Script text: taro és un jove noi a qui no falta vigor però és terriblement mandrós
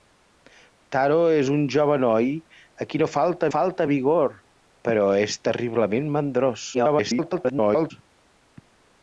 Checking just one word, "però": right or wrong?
right